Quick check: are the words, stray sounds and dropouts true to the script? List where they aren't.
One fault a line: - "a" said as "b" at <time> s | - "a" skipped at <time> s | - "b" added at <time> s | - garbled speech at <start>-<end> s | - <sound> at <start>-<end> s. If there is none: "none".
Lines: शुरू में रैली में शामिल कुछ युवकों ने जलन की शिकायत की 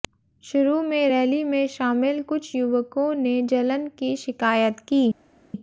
none